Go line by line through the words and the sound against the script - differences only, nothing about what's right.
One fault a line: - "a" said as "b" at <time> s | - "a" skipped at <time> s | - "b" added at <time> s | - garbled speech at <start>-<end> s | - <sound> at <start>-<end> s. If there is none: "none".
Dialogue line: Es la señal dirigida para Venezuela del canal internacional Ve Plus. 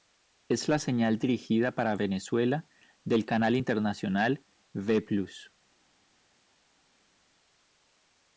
none